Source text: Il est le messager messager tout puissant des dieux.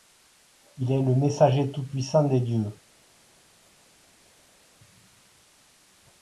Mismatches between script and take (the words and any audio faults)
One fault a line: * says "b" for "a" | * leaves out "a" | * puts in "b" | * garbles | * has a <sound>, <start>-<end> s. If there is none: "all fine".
* leaves out "messager"